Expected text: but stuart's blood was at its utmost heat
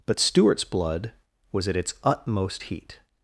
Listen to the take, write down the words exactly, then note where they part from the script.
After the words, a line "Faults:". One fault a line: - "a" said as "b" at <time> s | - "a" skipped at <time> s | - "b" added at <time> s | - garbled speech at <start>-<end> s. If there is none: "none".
but stuart's blood was at its utmost heat
Faults:
none